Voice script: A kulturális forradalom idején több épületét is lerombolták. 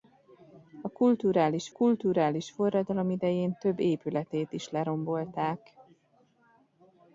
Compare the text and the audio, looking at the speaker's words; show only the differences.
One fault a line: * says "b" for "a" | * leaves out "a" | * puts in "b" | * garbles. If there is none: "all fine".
* puts in "kulturális"